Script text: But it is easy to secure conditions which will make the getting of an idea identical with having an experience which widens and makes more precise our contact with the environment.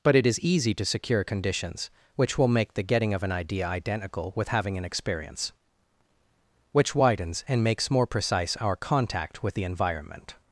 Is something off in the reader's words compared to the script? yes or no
no